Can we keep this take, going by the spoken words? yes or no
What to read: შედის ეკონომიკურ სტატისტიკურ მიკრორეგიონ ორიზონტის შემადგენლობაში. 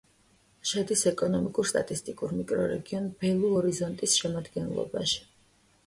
no